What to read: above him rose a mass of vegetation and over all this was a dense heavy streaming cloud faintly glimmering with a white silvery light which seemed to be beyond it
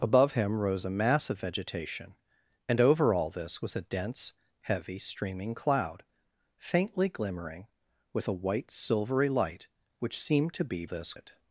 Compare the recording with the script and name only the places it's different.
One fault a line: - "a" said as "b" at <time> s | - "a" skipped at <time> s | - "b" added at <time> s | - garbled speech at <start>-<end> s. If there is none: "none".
- "beyond" said as "this" at 10.8 s